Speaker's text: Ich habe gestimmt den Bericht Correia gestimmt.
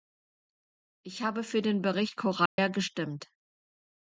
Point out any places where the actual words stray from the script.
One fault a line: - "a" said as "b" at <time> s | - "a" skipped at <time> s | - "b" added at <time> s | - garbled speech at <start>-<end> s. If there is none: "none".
- "gestimmt" said as "für" at 1.4 s